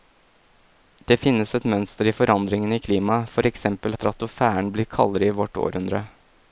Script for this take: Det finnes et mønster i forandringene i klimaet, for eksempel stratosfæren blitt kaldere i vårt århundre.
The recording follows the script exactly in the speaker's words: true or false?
true